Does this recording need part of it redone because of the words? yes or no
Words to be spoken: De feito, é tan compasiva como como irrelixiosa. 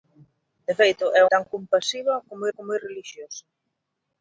no